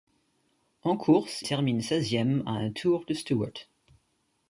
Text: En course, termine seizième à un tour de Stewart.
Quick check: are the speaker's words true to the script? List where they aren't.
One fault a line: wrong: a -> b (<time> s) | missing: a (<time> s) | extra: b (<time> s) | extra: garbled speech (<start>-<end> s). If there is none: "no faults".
no faults